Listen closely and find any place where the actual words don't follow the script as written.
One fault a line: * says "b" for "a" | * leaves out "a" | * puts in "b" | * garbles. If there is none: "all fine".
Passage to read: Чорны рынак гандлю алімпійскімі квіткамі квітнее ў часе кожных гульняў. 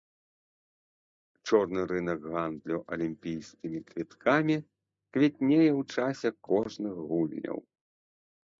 all fine